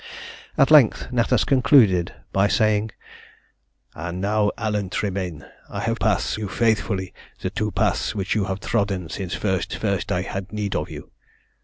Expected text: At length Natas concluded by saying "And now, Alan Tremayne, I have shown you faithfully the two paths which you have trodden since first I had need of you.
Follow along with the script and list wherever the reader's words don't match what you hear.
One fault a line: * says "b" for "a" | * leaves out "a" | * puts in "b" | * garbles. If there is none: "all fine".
* says "paths" for "shown"
* puts in "first"